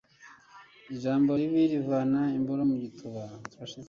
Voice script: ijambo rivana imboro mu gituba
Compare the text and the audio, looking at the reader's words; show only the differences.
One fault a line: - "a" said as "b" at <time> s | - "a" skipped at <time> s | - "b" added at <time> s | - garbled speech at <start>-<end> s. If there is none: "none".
- "ribi" added at 1.4 s